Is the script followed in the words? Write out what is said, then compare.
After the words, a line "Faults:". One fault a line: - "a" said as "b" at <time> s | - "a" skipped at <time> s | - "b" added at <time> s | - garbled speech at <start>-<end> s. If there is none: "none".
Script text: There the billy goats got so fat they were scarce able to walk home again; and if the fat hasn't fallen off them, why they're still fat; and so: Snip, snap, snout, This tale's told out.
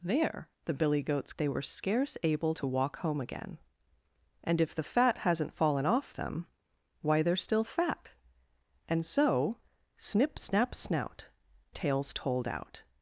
There the billy goats they were scarce able to walk home again; and if the fat hasn't fallen off them, why they're still fat; and so: Snip, snap, snout, Tale's told out.
Faults:
- "got so fat" skipped at 1.3 s
- "This" skipped at 11.3 s